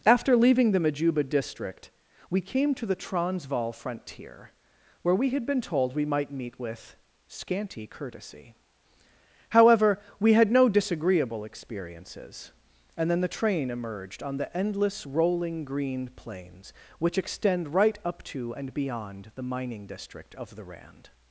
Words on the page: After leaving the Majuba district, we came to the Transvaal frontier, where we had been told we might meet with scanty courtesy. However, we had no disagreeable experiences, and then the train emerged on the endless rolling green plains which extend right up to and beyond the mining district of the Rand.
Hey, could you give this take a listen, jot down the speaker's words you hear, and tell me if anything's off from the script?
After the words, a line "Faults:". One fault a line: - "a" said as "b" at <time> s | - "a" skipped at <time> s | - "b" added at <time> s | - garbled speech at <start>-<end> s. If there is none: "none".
After leaving the Majuba district, we came to the Transvaal frontier, where we had been told we might meet with scanty courtesy. However, we had no disagreeable experiences, and then the train emerged on the endless rolling green plains which extend right up to and beyond the mining district of the Rand.
Faults:
none